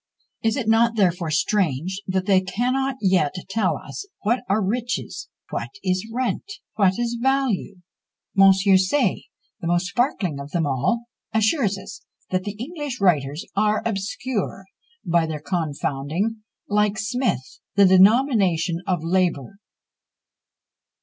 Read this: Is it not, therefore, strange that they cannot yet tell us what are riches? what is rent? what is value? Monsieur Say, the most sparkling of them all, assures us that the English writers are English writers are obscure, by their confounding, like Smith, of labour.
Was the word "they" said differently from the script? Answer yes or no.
no